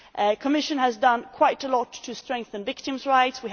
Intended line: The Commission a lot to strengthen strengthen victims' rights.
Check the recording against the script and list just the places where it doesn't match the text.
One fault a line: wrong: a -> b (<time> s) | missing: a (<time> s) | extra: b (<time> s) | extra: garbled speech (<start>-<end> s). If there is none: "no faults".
extra: has done quite (0.8 s)
missing: strengthen (2.6 s)